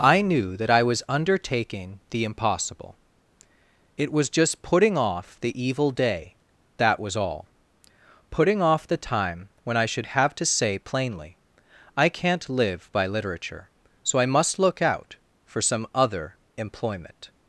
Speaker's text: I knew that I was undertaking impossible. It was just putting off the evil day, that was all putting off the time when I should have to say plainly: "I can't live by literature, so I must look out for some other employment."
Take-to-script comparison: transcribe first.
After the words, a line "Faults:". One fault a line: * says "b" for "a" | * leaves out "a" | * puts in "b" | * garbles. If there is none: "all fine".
I knew that I was undertaking the impossible. It was just putting off the evil day, that was all putting off the time when I should have to say plainly: "I can't live by literature, so I must look out for some other employment."
Faults:
* puts in "the"